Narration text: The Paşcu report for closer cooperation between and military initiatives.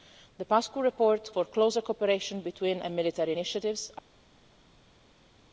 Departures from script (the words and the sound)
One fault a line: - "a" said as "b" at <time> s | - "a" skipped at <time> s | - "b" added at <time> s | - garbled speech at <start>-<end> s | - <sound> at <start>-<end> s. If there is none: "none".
none